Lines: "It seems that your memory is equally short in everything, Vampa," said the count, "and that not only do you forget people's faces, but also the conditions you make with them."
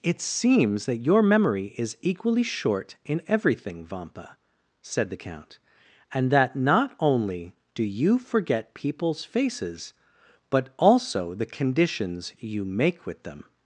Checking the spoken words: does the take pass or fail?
pass